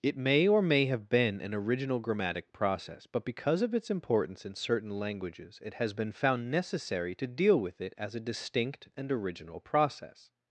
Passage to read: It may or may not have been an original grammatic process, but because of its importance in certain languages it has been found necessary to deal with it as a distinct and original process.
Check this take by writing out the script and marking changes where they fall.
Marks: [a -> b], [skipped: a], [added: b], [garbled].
It may or may [skipped: not] have been an original grammatic process, but because of its importance in certain languages it has been found necessary to deal with it as a distinct and original process.